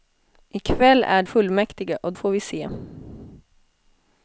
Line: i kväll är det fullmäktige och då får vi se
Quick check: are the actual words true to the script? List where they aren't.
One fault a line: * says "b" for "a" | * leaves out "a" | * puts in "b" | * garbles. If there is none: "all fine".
* leaves out "det"
* leaves out "då"